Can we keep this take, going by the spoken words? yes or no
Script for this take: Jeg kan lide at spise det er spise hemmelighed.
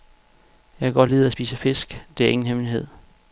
no